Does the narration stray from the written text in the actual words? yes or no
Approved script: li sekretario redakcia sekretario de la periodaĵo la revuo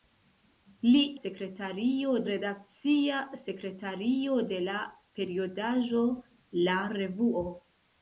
no